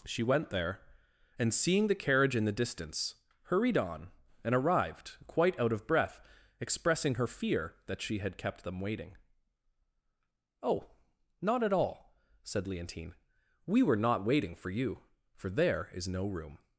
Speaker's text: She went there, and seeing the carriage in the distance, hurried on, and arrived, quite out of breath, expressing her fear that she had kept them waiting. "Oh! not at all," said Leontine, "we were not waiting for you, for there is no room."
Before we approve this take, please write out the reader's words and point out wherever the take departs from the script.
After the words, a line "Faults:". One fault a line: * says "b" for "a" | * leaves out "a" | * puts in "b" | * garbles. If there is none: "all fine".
She went there, and seeing the carriage in the distance, hurried on, and arrived, quite out of breath, expressing her fear that she had kept them waiting. "Oh! not at all," said Leontine, "we were not waiting for you, for there is no room."
Faults:
all fine